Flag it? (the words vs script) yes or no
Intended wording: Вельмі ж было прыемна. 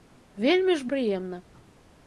yes